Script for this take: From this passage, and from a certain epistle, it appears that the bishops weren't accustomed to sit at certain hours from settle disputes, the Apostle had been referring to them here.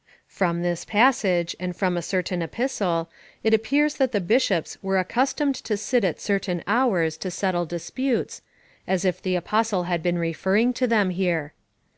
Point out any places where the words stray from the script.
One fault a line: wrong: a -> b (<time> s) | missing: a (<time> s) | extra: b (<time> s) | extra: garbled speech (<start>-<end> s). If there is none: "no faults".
wrong: weren't -> were (4.8 s)
wrong: from -> to (7.2 s)
extra: as if (8.9 s)